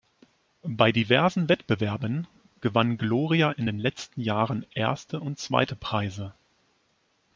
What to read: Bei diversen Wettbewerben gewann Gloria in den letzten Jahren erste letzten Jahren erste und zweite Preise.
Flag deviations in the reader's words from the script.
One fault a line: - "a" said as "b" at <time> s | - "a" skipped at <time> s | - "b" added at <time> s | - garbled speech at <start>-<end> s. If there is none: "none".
- "letzten Jahren erste" skipped at 5.2 s